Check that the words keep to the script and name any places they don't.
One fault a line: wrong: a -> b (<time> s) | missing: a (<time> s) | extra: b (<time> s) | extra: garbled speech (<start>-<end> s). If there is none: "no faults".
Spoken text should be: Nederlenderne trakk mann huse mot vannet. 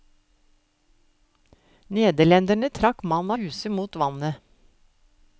no faults